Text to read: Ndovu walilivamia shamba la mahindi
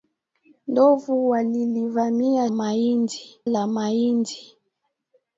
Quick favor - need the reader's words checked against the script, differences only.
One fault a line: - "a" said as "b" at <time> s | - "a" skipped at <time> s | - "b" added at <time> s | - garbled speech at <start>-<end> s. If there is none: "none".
- "shamba" said as "mahindi" at 2.5 s